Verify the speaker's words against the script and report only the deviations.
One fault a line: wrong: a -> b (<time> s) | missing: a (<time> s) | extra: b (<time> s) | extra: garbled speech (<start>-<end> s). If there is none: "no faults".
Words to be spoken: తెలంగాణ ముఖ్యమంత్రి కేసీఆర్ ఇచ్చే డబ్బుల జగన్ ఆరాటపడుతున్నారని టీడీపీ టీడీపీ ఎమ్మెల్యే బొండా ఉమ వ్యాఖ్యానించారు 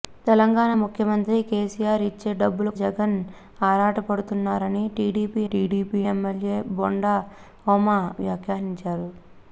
no faults